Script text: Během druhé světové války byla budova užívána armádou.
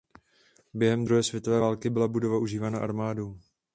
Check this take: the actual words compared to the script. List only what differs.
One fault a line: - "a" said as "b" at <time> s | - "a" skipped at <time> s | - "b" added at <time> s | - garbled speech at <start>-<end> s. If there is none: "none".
none